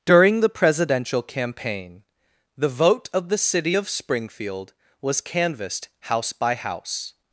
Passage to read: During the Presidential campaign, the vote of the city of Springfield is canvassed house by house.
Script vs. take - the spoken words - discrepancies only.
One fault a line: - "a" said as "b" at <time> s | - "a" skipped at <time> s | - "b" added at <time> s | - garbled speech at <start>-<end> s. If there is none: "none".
- "is" said as "was" at 5.0 s